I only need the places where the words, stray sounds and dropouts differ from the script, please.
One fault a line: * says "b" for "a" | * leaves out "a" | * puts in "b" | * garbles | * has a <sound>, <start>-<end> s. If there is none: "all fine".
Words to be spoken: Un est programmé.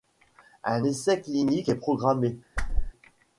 * puts in "essai clinique"
* has a whoosh, 2.6-2.9 s